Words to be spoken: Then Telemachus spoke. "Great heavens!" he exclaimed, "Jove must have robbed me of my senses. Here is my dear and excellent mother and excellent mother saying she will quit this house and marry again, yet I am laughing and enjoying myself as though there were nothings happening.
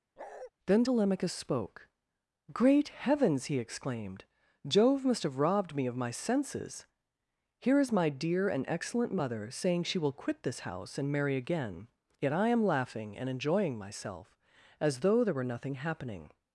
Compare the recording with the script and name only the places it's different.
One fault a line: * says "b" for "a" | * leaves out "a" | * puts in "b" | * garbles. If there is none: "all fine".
* leaves out "and excellent mother"
* says "nothing" for "nothings"